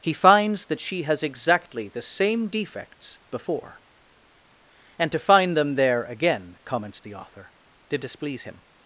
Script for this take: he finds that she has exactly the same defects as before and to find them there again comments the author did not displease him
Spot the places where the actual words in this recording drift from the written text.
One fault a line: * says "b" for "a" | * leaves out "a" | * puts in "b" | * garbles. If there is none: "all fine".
* leaves out "as"
* leaves out "not"